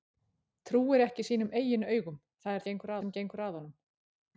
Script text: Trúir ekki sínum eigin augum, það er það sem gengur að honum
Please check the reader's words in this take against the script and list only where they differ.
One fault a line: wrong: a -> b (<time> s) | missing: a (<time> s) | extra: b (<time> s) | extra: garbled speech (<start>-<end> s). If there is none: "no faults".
wrong: það -> gengur (2.7 s)